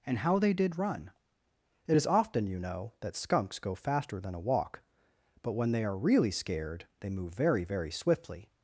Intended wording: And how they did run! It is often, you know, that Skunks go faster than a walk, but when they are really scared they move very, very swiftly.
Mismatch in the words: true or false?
false